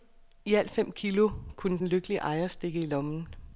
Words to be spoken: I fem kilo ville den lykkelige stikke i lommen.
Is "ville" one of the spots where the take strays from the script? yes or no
yes